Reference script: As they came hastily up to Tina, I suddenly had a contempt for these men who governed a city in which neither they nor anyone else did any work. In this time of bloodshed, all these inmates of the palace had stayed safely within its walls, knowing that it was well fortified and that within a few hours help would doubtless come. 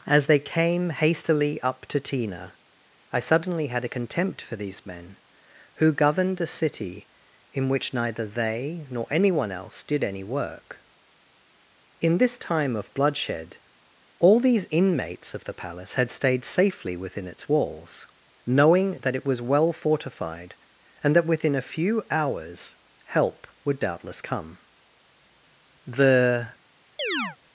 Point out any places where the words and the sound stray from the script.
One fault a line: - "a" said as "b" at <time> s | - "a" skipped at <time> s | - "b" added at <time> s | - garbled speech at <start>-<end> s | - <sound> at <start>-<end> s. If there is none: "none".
- "The" added at 25.9 s
- chirp at 27.0-27.4 s